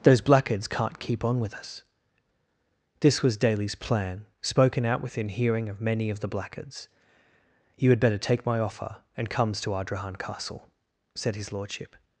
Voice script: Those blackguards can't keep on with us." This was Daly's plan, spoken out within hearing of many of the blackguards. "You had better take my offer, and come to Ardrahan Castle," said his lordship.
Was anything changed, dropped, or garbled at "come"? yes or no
yes